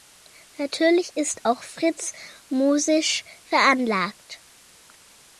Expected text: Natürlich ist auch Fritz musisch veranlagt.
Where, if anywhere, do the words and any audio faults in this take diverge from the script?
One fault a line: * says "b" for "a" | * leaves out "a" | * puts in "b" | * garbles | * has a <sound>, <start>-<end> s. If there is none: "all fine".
all fine